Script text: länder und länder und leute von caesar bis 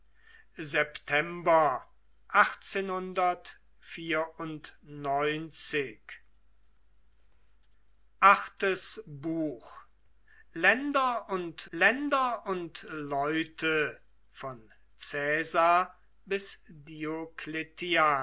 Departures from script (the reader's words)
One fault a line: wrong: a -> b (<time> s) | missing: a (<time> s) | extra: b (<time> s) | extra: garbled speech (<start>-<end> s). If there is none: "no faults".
no faults